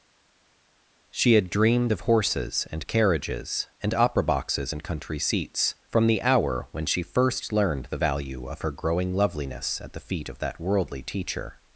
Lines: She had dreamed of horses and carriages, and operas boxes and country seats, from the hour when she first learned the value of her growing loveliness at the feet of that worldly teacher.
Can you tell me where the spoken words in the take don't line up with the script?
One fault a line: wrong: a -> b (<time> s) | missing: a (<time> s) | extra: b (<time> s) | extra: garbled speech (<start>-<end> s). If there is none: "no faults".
wrong: operas -> opera (3.9 s)